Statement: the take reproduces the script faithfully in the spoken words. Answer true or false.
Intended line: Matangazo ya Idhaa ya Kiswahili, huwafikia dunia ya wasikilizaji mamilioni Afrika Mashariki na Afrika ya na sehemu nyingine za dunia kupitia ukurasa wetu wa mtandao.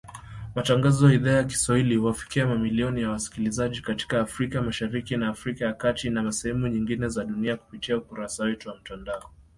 false